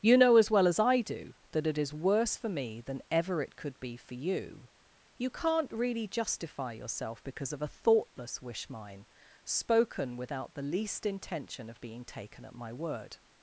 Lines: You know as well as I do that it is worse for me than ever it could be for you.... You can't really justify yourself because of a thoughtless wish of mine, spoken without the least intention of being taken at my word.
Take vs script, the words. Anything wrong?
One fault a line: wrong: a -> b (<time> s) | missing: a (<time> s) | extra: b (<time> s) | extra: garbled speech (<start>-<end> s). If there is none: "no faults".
missing: of (8.7 s)